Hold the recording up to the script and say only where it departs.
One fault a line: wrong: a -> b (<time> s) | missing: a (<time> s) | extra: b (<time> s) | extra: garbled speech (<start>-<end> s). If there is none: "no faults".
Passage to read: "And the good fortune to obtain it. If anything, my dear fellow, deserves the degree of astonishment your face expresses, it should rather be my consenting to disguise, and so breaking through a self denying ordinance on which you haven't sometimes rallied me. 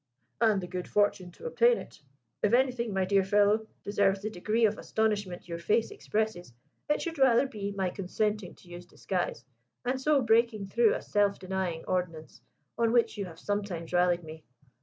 extra: use (8.7 s)
wrong: haven't -> have (13.3 s)